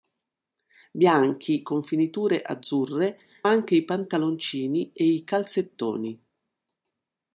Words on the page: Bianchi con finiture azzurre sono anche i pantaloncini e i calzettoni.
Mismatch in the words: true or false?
true